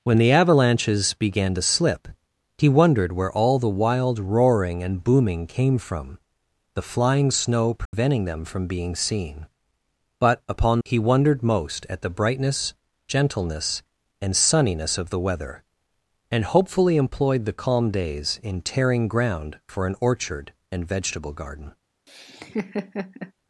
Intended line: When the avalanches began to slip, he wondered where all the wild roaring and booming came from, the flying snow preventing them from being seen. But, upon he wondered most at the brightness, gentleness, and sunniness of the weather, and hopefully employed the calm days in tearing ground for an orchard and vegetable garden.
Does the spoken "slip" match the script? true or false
true